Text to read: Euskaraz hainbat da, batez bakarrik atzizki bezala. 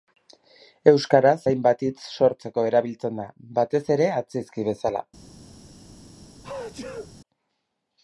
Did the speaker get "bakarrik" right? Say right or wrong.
wrong